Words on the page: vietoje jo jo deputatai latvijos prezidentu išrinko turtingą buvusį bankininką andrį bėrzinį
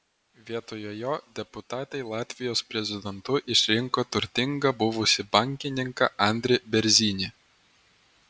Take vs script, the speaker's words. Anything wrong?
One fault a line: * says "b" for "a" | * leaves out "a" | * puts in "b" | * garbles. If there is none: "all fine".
* leaves out "jo"